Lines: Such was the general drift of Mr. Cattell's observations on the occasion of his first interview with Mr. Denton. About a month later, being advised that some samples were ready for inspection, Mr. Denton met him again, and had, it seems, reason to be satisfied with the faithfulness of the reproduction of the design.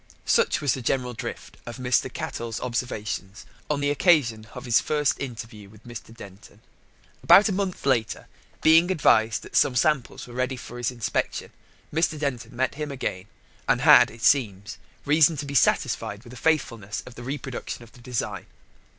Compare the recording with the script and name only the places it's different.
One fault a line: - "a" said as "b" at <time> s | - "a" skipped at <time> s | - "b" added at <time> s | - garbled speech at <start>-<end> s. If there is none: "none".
- "his" added at 10.8 s